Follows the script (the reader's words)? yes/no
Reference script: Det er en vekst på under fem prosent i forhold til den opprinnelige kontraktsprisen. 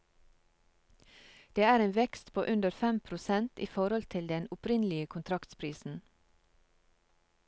yes